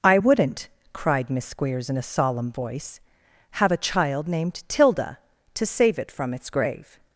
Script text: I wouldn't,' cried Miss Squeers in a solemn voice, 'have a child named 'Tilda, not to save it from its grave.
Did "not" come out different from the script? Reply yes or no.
yes